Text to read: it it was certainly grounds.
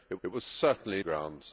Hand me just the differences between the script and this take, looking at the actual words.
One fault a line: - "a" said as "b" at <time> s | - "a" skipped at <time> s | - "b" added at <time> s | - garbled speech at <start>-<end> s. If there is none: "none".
none